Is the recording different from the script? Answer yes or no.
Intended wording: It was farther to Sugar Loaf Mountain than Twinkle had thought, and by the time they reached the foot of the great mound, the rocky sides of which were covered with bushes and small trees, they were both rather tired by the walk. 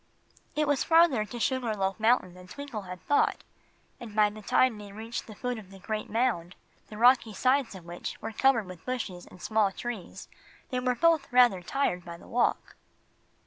no